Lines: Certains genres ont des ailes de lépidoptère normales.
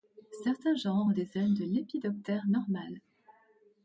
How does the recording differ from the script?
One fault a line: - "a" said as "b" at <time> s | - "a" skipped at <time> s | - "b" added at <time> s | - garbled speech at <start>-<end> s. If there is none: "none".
none